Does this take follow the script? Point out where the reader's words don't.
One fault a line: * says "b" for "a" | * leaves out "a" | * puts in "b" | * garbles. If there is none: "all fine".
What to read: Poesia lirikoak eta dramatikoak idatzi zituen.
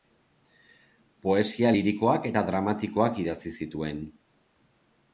all fine